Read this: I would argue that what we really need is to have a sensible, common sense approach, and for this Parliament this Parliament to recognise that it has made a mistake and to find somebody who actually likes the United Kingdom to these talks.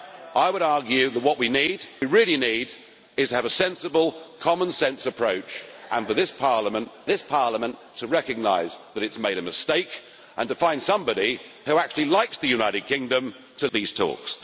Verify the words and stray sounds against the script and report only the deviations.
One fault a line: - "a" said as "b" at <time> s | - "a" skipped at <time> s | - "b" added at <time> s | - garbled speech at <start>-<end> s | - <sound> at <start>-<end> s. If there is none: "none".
none